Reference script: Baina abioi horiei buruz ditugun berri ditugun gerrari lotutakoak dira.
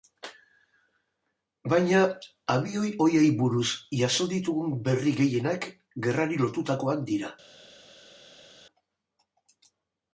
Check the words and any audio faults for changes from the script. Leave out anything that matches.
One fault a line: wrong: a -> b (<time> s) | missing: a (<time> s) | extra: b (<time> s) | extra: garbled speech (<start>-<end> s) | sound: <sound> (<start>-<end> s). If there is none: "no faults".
extra: jaso (4.0 s)
wrong: ditugun -> gehienak (5.2 s)